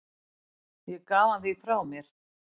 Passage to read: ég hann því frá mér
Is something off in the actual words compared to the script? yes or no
yes